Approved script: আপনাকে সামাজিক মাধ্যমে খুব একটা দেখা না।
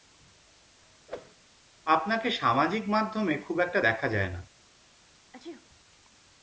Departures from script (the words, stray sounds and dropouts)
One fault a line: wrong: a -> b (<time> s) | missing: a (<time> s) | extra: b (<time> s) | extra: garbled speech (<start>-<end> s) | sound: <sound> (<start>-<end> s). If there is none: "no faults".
sound: whoosh (1.1-1.4 s)
extra: যায় (4.1 s)
sound: sneeze (5.3-5.7 s)